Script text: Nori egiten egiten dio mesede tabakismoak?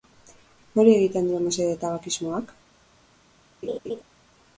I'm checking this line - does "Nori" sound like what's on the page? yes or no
yes